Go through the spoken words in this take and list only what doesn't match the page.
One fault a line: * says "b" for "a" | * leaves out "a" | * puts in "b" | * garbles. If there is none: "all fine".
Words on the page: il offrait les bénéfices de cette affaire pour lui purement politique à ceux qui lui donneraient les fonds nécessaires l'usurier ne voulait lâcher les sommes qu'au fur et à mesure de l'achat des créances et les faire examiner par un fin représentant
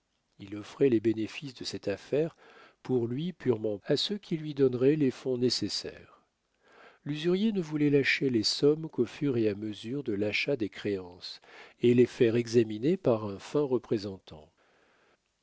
* leaves out "politique"